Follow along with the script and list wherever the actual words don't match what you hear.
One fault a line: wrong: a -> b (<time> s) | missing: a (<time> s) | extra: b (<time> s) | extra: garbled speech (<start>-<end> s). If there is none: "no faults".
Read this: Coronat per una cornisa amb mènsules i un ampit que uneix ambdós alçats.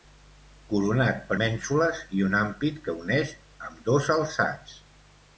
missing: una cornisa amb (1.4 s)